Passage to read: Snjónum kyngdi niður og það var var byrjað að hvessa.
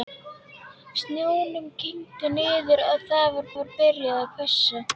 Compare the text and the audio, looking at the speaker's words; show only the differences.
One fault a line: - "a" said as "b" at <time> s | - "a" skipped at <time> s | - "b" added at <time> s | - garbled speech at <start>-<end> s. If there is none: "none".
none